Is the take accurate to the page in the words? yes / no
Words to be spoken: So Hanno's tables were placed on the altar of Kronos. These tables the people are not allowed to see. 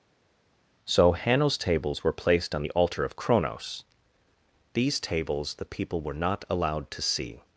no